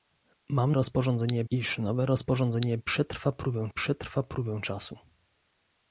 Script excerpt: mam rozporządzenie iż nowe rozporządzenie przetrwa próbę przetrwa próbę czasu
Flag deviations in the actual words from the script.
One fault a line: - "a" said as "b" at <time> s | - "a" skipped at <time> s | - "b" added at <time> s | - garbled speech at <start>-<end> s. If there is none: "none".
none